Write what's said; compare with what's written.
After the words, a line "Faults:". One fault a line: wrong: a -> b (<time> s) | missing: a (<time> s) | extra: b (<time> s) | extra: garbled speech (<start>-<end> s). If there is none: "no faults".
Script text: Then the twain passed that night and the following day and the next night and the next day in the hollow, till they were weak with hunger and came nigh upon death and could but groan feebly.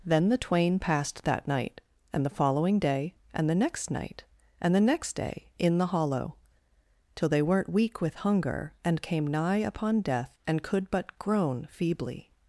Then the twain passed that night and the following day and the next night and the next day in the hollow, till they weren't weak with hunger and came nigh upon death and could but groan feebly.
Faults:
wrong: were -> weren't (7.4 s)